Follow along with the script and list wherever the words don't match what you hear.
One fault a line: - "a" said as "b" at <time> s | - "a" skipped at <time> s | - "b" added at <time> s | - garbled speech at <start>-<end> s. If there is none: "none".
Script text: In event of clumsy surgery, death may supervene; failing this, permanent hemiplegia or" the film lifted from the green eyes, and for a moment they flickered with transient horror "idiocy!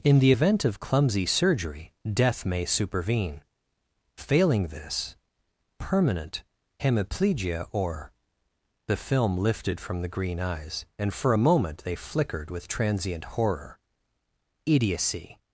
- "the" added at 0.2 s